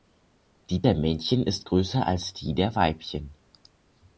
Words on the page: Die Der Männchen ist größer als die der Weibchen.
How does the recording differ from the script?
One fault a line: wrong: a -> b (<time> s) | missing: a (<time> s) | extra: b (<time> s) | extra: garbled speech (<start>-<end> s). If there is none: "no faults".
no faults